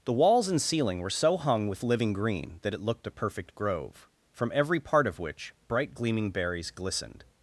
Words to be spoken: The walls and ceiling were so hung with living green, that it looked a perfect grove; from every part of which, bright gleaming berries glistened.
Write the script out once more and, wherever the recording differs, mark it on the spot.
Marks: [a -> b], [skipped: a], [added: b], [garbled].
The walls and ceiling were so hung with living green, that it looked a perfect grove; from every part of which, bright gleaming berries glistened.